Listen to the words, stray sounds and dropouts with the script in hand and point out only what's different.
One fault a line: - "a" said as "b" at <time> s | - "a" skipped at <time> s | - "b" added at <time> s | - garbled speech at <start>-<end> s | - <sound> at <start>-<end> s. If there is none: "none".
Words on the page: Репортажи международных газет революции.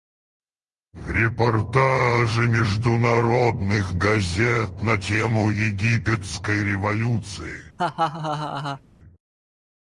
- "на тему египетской" added at 4.8 s
- laugh at 7.8-8.8 s